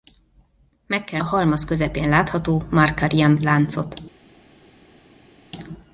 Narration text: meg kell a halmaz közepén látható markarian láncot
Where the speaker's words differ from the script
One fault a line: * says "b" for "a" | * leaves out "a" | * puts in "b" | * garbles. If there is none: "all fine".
all fine